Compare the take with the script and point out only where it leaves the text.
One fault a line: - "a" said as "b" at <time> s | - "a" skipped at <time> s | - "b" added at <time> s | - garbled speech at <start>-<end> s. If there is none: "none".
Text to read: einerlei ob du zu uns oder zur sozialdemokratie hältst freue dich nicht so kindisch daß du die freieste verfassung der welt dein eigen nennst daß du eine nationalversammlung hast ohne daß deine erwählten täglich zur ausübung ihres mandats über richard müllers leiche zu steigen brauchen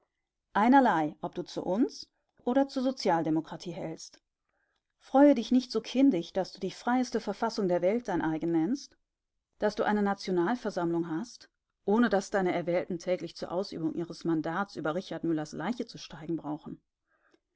none